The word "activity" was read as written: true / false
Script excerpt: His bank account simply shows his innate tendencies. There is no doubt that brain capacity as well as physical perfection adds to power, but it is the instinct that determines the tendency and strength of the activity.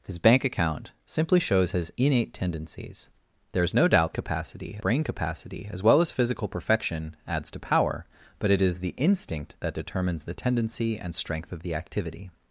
true